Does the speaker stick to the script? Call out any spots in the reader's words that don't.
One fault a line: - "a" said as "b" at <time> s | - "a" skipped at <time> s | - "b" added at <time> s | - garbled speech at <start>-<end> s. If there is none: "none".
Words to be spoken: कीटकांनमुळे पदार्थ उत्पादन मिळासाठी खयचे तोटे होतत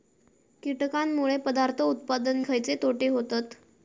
- "मिळासाठी" skipped at 2.4 s